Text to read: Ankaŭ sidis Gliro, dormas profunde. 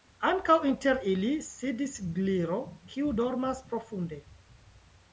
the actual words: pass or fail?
fail